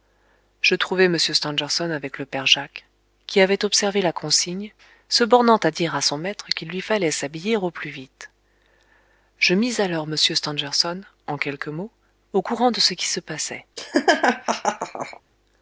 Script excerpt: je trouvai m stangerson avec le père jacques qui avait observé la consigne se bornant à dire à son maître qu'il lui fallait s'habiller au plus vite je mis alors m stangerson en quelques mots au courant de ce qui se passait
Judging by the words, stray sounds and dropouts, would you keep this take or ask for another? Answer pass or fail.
fail